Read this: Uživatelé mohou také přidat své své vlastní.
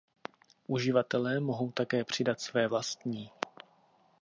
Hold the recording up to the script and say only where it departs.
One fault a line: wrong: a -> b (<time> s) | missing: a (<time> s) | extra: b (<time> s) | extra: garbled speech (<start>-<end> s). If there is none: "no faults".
missing: své (2.7 s)